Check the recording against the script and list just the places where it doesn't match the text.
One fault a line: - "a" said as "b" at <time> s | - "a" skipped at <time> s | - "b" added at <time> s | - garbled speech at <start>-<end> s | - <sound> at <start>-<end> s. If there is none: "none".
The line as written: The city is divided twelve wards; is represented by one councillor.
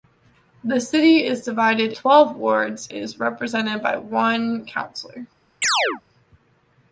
- chirp at 5.6-6.0 s